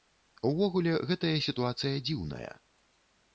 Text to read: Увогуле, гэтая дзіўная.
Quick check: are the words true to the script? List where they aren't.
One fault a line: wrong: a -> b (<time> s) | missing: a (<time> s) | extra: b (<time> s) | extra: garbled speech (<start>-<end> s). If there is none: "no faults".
extra: сітуацыя (1.5 s)